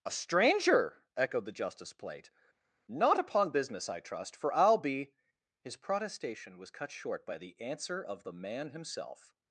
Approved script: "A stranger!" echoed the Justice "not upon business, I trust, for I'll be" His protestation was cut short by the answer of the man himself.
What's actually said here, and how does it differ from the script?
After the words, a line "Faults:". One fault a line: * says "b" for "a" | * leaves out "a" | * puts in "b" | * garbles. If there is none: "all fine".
"A stranger!" echoed the Justice plate "not upon business, I trust, for I'll be" His protestation was cut short by the answer of the man himself.
Faults:
* puts in "plate"